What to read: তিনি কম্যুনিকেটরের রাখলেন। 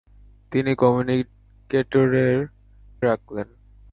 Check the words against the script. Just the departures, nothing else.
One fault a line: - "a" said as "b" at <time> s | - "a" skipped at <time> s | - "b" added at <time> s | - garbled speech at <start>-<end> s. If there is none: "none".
none